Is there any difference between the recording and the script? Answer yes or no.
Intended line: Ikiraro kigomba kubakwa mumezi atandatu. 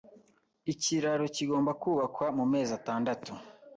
no